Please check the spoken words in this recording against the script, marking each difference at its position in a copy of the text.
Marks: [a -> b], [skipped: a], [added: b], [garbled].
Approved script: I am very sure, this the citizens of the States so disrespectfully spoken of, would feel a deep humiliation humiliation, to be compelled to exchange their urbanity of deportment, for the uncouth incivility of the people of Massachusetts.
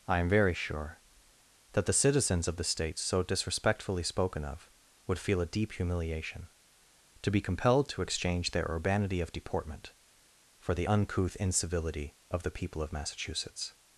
I am very sure, [this -> that] the citizens of the States so disrespectfully spoken of, would feel a deep humiliation [skipped: humiliation,] to be compelled to exchange their urbanity of deportment, for the uncouth incivility of the people of Massachusetts.